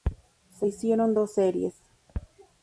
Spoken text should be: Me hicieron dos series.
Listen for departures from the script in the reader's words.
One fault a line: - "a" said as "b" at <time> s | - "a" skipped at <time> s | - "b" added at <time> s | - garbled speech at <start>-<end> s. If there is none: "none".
- "Me" said as "Se" at 0.5 s